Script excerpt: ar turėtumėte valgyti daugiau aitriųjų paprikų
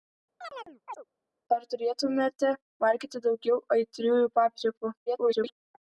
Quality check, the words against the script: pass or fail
fail